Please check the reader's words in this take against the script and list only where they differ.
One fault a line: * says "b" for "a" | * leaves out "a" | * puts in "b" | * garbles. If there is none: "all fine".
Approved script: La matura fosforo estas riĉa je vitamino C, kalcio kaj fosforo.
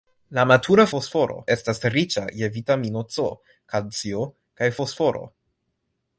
all fine